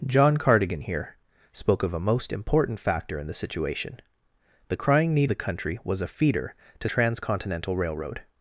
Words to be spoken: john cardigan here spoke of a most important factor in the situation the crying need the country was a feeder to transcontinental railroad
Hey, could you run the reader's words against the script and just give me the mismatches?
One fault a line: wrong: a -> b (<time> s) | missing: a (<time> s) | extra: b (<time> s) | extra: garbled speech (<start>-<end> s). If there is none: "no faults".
no faults